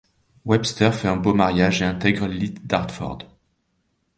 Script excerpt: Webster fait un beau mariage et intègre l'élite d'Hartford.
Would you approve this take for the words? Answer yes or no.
yes